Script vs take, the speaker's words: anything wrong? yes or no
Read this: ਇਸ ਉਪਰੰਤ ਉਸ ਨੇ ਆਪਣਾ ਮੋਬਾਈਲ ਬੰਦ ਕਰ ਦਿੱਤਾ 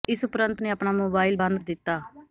yes